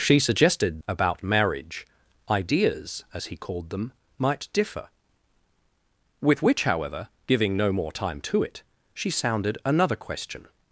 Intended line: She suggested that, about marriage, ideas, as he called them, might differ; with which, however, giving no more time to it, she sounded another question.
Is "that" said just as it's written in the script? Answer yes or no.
no